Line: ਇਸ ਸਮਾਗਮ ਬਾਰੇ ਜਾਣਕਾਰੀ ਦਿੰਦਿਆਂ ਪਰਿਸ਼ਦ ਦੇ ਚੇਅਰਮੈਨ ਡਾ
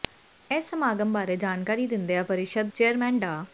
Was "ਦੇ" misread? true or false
true